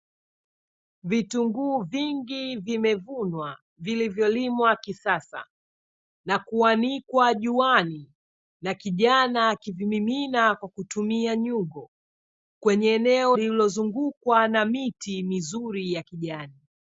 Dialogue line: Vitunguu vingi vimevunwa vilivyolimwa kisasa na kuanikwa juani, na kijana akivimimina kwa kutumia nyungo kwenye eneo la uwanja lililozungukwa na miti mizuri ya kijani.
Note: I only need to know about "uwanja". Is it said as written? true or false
false